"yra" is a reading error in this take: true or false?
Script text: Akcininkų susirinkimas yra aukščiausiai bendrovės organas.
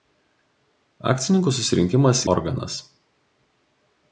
true